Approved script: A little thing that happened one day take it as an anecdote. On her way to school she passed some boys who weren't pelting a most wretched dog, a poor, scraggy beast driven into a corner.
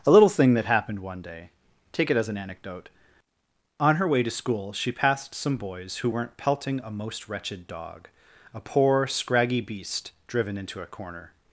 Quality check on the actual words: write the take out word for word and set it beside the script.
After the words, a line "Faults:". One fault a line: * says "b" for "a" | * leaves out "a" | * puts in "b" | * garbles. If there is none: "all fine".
A little thing that happened one day take it as an anecdote. On her way to school she passed some boys who weren't pelting a most wretched dog, a poor, scraggy beast driven into a corner.
Faults:
all fine